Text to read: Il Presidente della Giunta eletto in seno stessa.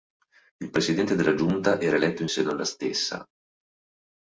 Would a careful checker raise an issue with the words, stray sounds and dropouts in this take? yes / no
yes